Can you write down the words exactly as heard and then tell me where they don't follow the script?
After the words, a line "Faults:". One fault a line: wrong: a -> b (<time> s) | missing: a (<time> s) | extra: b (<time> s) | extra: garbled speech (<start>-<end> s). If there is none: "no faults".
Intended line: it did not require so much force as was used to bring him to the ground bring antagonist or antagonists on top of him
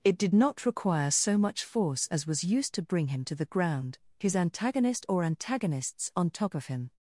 it did not require so much force as was used to bring him to the ground his antagonist or antagonists on top of him
Faults:
wrong: bring -> his (4.2 s)